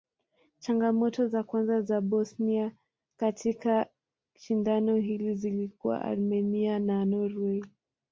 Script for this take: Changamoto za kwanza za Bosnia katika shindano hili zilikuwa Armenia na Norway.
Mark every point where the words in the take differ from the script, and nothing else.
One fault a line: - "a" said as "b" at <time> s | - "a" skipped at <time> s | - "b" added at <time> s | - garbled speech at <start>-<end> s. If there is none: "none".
none